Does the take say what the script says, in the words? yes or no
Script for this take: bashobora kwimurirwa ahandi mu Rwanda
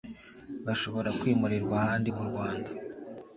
yes